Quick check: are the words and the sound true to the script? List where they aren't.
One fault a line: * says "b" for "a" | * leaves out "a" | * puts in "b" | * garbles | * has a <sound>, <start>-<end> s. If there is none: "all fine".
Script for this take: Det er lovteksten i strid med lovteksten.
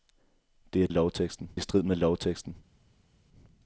all fine